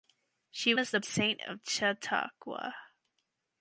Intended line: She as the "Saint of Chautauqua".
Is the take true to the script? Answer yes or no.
yes